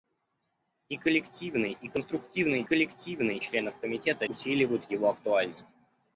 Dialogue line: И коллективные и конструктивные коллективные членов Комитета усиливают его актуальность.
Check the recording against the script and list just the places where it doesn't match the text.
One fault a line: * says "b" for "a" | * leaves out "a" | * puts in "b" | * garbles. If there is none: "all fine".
all fine